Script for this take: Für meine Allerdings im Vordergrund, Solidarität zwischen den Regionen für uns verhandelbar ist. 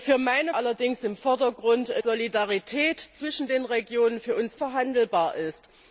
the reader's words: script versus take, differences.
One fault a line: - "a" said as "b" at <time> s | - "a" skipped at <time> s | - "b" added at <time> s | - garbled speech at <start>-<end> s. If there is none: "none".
none